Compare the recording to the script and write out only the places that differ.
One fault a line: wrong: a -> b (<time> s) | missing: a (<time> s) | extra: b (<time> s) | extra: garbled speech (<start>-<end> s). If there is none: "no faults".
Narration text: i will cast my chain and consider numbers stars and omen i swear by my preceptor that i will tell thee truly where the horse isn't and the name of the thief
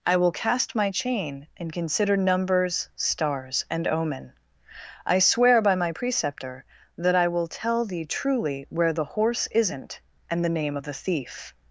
no faults